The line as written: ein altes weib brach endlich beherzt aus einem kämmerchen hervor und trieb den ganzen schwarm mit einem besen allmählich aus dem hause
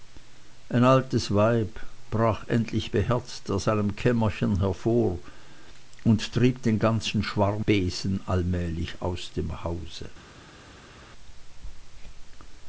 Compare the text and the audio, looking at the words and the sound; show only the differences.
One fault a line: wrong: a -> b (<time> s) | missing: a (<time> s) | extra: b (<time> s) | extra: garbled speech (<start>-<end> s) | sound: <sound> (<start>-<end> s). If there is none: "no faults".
missing: mit einem (7.6 s)